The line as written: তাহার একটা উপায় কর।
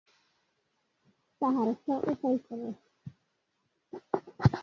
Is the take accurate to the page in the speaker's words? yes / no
yes